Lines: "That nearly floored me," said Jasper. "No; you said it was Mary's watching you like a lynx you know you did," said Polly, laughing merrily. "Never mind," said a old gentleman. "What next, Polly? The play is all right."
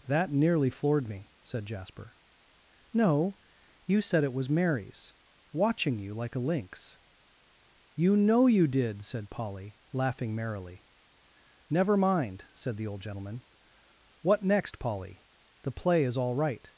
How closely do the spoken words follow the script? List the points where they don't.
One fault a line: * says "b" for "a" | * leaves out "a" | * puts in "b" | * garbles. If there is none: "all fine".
* says "the" for "a"